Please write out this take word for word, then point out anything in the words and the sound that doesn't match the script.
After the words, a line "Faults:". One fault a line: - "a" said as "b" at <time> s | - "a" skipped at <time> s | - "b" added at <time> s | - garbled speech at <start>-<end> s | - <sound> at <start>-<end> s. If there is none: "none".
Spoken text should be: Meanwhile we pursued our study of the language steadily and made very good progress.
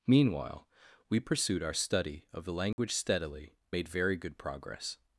Meanwhile we pursued our study of the language steadily made very good progress.
Faults:
- dropout at 2.7-2.8 s
- "and" skipped at 3.5 s